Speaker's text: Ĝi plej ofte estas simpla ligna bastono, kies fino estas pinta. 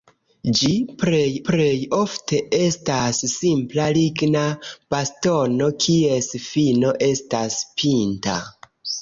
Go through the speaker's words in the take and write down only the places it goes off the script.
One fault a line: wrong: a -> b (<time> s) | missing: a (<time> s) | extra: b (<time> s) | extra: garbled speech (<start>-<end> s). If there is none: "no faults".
extra: plej (1.5 s)